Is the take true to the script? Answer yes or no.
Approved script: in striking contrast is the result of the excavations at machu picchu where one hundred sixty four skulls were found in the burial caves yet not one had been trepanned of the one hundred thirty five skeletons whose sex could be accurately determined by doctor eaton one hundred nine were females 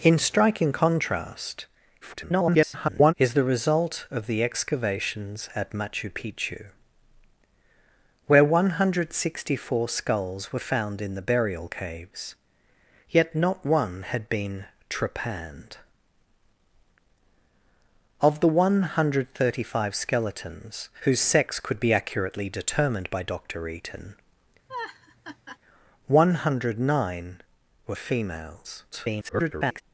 no